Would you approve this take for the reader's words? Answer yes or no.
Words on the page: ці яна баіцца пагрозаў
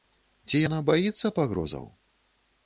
yes